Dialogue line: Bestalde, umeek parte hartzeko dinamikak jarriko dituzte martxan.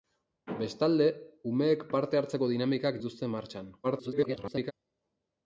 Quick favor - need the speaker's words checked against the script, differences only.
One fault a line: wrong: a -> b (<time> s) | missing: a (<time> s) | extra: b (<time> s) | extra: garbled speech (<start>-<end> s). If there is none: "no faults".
missing: jarriko (3.0 s)
extra: garbled speech (3.8-4.7 s)